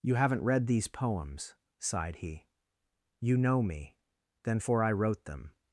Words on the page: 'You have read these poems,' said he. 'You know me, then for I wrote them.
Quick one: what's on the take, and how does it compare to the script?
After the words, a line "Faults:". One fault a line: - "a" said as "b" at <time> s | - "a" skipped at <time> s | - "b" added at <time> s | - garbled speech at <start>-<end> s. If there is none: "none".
'You haven't read these poems,' sighed he. 'You know me, then for I wrote them.
Faults:
- "have" said as "haven't" at 0.1 s
- "said" said as "sighed" at 1.8 s